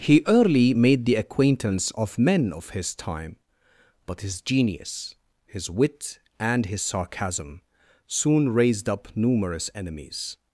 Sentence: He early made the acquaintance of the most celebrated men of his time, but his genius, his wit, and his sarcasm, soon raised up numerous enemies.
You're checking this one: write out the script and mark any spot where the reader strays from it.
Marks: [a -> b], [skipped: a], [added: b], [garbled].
He early made the acquaintance of [skipped: the most celebrated] men of his time, but his genius, his wit, and his sarcasm, soon raised up numerous enemies.